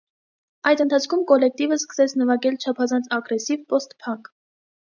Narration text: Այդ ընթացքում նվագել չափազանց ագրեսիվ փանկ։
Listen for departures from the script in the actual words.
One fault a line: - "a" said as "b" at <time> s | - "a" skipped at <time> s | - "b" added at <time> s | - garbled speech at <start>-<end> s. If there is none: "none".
- "կոլեկտիվը սկսեց" added at 1.3 s
- "պոստ" added at 3.8 s